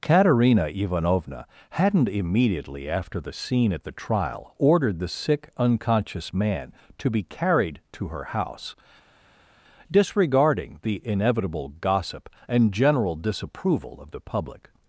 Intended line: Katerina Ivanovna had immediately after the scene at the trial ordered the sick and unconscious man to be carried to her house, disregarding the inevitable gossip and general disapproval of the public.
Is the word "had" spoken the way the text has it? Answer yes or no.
no